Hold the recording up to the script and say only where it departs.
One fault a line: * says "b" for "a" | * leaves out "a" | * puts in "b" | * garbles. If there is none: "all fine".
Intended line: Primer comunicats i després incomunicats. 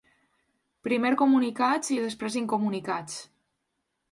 all fine